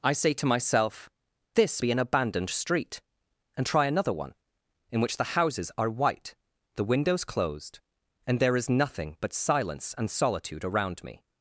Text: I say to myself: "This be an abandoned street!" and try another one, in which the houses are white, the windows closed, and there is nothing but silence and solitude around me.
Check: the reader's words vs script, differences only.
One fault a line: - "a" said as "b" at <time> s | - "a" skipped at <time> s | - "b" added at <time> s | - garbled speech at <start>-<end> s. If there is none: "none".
none